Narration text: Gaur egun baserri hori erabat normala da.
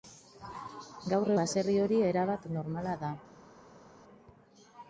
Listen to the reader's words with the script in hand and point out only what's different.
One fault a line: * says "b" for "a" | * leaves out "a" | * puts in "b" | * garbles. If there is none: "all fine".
* leaves out "egun"